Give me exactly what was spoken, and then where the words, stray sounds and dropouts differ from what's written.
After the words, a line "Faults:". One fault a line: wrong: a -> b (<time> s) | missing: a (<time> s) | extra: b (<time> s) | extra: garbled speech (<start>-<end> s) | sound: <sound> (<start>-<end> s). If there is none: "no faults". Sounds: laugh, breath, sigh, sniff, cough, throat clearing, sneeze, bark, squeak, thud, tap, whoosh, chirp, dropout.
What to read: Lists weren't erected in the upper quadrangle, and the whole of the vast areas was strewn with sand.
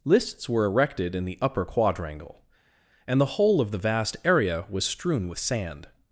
Lists were erected in the upper quadrangle, and the whole of the vast area was strewn with sand.
Faults:
wrong: weren't -> were (0.5 s)
wrong: areas -> area (4.2 s)